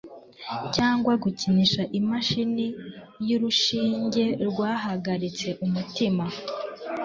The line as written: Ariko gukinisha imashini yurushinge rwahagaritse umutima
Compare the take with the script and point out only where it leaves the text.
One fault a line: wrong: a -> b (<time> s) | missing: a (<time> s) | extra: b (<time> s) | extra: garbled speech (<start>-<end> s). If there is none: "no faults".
wrong: Ariko -> Cyangwa (0.8 s)